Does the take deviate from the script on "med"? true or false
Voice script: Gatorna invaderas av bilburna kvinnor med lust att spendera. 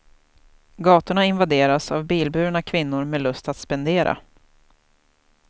false